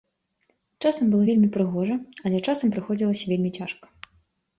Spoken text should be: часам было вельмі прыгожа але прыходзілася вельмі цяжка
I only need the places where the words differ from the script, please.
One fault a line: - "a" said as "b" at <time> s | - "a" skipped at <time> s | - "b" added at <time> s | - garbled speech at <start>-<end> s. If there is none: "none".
- "часам" added at 2.5 s